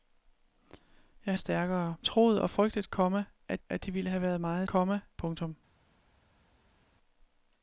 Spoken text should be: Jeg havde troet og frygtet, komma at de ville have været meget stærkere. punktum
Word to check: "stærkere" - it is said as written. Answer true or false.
false